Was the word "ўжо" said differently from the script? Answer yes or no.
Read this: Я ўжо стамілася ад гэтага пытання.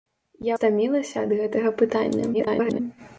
yes